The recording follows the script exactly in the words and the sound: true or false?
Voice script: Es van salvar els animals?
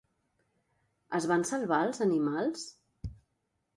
true